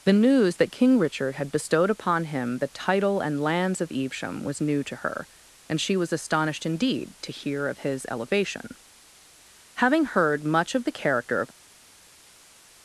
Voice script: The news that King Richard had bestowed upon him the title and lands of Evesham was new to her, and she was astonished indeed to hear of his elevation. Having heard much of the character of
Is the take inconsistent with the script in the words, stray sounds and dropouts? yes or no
no